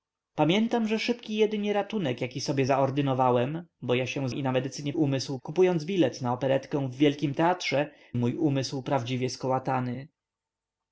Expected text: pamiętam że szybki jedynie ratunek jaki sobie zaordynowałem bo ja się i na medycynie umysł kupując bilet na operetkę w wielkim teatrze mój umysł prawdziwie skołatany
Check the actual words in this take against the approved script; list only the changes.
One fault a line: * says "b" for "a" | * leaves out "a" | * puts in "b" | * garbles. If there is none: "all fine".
all fine